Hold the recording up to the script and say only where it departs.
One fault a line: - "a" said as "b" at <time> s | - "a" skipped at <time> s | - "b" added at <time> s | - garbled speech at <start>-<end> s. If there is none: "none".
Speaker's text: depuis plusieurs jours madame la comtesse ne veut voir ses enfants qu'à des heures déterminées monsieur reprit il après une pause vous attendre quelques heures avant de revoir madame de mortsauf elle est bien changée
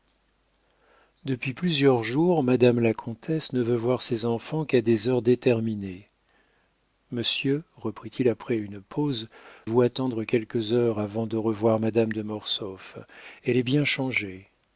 none